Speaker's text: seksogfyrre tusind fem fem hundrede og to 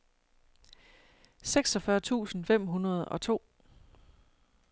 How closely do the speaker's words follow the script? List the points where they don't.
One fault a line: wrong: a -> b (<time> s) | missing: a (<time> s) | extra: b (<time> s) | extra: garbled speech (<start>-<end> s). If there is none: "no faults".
missing: fem (2.7 s)